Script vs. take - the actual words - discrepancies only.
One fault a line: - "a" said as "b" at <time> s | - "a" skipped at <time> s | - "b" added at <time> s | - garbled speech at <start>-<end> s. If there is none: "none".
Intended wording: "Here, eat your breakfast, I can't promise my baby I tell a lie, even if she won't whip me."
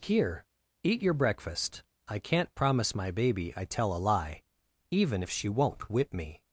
none